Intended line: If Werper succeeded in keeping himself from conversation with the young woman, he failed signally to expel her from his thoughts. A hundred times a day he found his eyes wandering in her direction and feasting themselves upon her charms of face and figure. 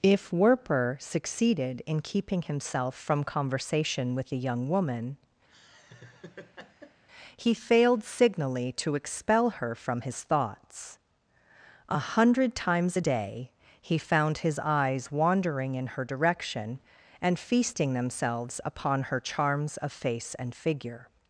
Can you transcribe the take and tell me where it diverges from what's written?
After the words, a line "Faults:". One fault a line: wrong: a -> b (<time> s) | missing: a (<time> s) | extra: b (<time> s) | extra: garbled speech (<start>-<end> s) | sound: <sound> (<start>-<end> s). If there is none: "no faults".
If Werper succeeded in keeping himself from conversation with the young woman, he failed signally to expel her from his thoughts. A hundred times a day he found his eyes wandering in her direction and feasting themselves upon her charms of face and figure.
Faults:
sound: laugh (5.5-7.0 s)